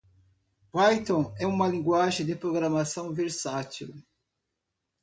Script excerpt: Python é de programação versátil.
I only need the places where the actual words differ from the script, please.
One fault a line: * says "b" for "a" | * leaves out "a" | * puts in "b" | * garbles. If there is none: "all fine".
* puts in "uma linguagem"